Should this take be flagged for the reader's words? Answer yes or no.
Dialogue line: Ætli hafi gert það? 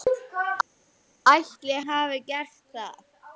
no